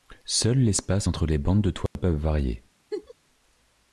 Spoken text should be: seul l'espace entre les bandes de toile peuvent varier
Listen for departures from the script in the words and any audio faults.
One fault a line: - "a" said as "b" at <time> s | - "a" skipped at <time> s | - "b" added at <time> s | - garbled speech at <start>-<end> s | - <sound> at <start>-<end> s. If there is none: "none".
- dropout at 1.9-2.0 s
- laugh at 2.9-3.1 s